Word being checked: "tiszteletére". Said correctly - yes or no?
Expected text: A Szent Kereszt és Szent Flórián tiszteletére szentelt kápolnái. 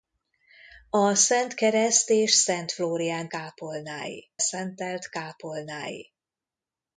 no